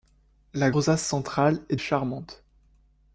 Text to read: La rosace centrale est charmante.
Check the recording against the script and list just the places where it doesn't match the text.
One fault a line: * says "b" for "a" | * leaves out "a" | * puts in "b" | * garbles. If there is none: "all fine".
all fine